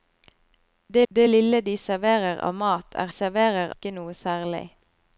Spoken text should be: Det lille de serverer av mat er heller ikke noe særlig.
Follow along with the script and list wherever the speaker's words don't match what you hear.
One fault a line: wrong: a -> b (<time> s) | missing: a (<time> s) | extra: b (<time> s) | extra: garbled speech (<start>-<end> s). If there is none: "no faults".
extra: det (1.1 s)
wrong: heller -> serverer (3.1 s)